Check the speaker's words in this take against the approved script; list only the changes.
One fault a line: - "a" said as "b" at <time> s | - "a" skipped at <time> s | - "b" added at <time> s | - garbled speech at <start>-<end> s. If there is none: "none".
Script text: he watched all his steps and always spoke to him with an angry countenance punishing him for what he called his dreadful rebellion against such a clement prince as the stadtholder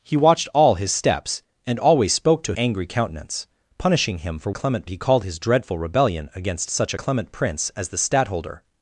- "him with an" skipped at 2.5 s
- "what" said as "clement" at 4.5 s
- "a" skipped at 6.9 s